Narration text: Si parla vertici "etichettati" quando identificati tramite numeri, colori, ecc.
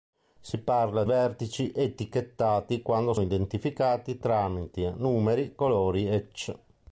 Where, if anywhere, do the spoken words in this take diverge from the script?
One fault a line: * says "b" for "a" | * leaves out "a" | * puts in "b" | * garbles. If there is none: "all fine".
all fine